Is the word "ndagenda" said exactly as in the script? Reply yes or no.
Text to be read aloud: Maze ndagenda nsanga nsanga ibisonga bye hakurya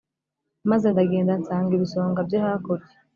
yes